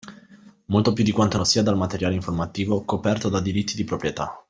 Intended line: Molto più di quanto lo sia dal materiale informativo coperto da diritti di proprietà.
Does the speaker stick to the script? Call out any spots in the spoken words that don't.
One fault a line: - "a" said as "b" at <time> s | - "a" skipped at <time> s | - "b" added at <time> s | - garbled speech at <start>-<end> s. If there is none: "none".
none